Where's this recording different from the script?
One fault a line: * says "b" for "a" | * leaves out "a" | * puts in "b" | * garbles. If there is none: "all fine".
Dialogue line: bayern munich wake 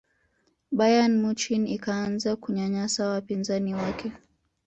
* puts in "ikaanza kunyanyasa wapinzani"